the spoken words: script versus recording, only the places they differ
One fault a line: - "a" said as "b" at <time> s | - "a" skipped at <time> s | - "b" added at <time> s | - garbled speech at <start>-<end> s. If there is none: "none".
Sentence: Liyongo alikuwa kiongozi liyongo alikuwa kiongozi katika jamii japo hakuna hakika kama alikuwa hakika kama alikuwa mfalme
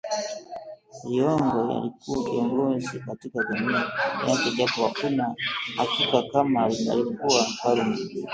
- "liyongo alikuwa kiongozi" skipped at 3.0 s
- "yake" added at 4.3 s
- "hakika kama alikuwa" skipped at 7.4 s